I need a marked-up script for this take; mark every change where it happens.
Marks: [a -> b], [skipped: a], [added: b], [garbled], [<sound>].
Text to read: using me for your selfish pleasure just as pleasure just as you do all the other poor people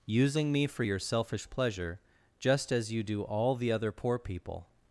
using me for your selfish pleasure just as [skipped: pleasure just as] you do all the other poor people